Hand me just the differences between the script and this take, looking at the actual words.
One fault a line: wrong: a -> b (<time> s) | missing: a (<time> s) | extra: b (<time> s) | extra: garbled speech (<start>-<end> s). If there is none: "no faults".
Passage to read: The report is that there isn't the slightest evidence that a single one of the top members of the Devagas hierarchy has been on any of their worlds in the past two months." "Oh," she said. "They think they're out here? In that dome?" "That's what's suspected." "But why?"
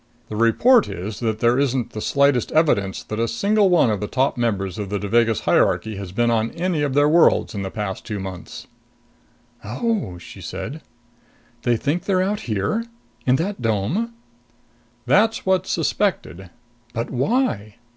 no faults